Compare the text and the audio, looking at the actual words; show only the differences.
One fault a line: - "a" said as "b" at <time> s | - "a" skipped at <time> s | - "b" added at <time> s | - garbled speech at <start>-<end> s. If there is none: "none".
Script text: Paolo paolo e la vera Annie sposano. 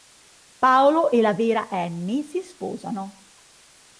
- "paolo" skipped at 1.1 s
- "si" added at 2.2 s